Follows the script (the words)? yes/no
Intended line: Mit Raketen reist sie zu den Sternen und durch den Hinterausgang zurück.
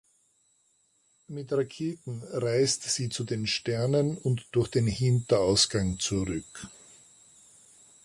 yes